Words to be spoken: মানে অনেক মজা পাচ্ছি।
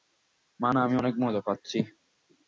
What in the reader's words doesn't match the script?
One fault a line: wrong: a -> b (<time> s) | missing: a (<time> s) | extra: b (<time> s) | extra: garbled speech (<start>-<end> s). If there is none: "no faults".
extra: আমি (0.8 s)